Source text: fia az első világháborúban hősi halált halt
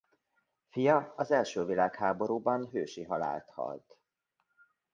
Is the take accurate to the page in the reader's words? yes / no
yes